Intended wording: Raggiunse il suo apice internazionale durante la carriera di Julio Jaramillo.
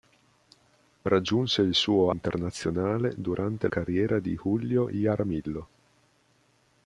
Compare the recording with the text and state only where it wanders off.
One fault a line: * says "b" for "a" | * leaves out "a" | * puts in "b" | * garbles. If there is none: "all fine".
* leaves out "apice"
* leaves out "la"